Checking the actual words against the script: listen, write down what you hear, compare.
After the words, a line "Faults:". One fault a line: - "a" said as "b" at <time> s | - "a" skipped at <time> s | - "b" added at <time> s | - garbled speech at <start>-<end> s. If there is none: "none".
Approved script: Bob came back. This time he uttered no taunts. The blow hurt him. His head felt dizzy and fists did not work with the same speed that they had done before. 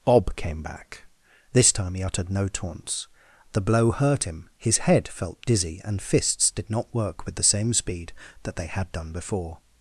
Bob came back. This time he uttered no taunts. The blow hurt him. His head felt dizzy and fists did not work with the same speed that they had done before.
Faults:
none